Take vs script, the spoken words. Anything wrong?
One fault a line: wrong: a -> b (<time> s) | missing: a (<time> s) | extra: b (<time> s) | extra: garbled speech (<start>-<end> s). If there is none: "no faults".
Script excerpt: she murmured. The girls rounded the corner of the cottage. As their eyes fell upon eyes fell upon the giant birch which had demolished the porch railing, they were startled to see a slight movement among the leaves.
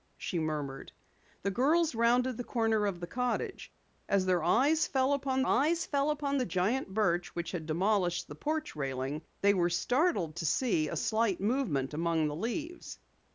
no faults